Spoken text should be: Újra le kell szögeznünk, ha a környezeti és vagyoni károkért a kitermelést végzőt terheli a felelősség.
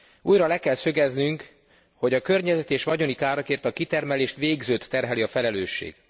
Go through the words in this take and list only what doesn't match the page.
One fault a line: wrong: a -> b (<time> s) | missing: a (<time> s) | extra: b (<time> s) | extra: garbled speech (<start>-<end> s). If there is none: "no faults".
wrong: ha -> hogy (1.9 s)